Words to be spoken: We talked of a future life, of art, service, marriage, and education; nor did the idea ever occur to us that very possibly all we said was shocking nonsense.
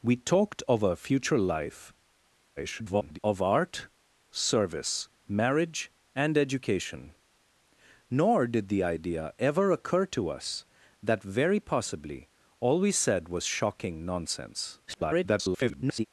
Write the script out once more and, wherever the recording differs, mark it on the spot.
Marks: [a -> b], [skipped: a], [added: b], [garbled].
We talked of a future life, [garbled] of art, service, marriage, and education; nor did the idea ever occur to us that very possibly all we said was shocking nonsense. [garbled]